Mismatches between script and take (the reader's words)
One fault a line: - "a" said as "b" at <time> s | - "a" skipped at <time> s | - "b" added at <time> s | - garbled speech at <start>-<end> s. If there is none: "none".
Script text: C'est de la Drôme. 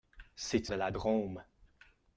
none